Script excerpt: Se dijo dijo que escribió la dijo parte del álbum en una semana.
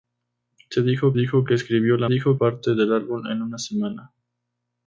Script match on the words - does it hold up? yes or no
yes